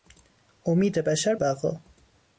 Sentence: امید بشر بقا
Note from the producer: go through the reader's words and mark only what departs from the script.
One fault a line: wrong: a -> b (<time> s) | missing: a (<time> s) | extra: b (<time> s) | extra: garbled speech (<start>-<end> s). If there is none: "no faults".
no faults